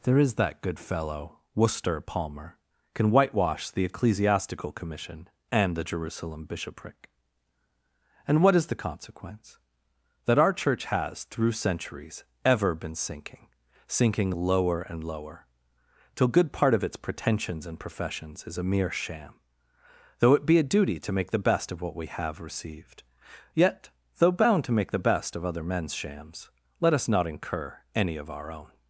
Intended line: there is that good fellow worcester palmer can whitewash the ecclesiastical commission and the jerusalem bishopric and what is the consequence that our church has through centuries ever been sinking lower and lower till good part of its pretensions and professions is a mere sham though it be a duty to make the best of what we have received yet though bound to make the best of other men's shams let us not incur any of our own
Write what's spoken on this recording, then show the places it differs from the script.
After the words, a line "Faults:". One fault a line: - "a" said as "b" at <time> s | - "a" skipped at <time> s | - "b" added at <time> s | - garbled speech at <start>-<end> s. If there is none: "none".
there is that good fellow worcester palmer can whitewash the ecclesiastical commission and the jerusalem bishopric and what is the consequence that our church has through centuries ever been sinking sinking lower and lower till good part of its pretensions and professions is a mere sham though it be a duty to make the best of what we have received yet though bound to make the best of other men's shams let us not incur any of our own
Faults:
- "sinking" added at 13.9 s